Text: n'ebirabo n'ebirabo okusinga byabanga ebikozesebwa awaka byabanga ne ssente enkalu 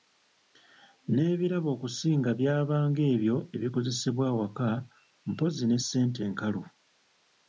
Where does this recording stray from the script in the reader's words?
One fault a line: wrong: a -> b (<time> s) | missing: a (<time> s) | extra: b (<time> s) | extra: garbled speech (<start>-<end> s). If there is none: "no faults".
missing: n'ebirabo (1.7 s)
extra: ebyo (3.1 s)
wrong: byabanga -> mpozzi (5.3 s)